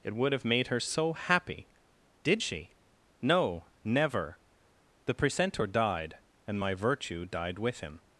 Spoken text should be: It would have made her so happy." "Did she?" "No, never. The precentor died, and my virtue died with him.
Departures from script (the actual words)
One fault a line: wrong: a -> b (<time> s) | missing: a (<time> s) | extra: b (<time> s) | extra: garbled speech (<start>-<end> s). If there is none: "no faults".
no faults